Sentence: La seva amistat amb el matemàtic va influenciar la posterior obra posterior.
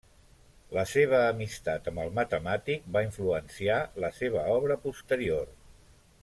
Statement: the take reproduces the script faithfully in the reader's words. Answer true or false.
false